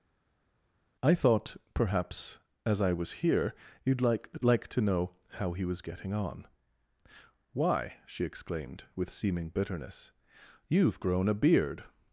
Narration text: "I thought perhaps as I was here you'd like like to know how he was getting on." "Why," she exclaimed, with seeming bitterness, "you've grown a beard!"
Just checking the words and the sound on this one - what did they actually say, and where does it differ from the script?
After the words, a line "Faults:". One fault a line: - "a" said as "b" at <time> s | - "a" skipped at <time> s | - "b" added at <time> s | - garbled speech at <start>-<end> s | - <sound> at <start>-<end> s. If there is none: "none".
"I thought perhaps as I was here you'd like like to know how he was getting on." "Why," she exclaimed, with seeming bitterness, "you've grown a beard!"
Faults:
none